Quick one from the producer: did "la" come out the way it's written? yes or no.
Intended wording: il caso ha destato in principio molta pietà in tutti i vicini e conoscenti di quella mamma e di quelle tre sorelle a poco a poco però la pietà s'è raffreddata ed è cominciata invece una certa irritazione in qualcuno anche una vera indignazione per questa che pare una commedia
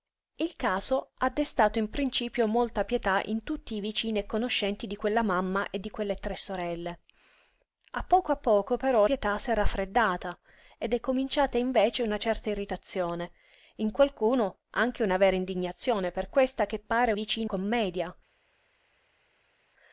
no